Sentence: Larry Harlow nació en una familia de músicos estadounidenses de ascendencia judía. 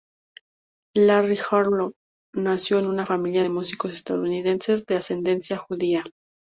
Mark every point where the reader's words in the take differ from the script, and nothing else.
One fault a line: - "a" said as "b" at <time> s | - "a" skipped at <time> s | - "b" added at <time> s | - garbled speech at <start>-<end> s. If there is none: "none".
none